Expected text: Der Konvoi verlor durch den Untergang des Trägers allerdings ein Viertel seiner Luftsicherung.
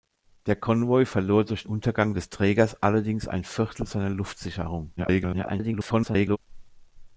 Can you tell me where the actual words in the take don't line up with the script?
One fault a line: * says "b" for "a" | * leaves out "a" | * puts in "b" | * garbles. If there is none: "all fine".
* leaves out "den"
* garbles